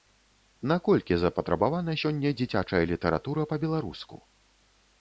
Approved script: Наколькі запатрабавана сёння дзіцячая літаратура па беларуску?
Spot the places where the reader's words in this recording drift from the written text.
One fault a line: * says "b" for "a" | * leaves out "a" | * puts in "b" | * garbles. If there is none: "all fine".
all fine